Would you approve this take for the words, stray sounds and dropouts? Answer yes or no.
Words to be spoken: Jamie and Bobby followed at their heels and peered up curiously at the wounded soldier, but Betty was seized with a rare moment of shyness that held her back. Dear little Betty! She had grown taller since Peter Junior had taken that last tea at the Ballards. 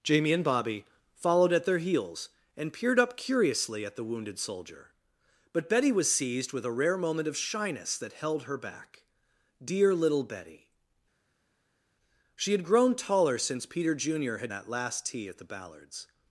no